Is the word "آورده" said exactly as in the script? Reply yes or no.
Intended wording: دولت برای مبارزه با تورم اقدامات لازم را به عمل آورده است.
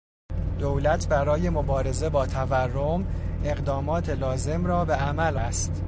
no